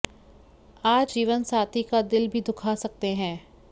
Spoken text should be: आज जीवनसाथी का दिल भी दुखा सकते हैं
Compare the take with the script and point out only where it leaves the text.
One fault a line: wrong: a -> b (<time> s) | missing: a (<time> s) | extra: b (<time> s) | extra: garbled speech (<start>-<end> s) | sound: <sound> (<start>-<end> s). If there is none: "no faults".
no faults